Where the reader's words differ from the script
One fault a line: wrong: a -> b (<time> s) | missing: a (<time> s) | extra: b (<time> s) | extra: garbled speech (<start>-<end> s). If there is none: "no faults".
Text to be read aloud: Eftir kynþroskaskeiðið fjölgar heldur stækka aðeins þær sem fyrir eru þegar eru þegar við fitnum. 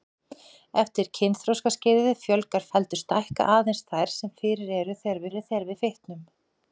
no faults